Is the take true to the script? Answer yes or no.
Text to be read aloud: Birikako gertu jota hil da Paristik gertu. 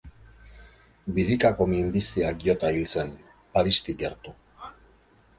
no